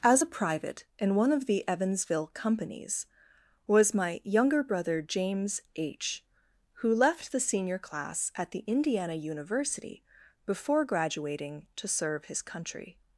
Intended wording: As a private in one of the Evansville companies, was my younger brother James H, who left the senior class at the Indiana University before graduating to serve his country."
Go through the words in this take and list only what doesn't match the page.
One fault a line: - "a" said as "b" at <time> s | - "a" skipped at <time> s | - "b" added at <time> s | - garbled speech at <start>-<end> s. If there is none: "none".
none